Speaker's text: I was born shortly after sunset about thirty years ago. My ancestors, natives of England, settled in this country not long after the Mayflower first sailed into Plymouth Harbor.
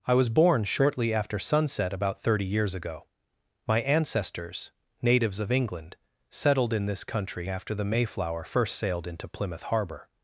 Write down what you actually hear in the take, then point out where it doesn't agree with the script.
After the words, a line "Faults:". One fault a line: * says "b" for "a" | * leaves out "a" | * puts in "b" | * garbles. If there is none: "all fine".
I was born shortly after sunset about thirty years ago. My ancestors, natives of England, settled in this country after the Mayflower first sailed into Plymouth Harbor.
Faults:
* leaves out "not long"